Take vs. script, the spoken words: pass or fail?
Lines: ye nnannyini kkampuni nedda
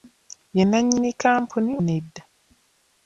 pass